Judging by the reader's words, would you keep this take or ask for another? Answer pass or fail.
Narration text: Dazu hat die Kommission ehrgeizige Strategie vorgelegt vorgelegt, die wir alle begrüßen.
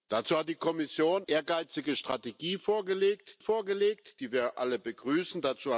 pass